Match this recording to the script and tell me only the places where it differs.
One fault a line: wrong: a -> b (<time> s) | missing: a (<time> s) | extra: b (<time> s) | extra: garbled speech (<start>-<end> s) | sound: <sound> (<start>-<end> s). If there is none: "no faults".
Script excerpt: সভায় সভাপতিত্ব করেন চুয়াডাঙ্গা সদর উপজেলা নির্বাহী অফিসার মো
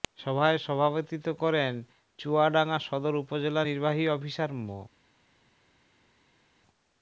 no faults